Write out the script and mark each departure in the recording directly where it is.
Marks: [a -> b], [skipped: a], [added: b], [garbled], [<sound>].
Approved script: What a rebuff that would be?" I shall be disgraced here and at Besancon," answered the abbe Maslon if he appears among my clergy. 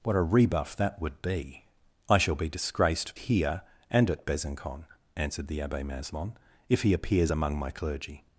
What a rebuff that would be?" I shall be disgraced here and at Besancon," answered the abbe Maslon if he appears among my clergy.